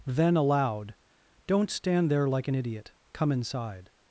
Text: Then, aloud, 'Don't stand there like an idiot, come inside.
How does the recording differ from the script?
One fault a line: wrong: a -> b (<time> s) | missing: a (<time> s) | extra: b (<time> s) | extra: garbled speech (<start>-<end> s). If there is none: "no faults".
no faults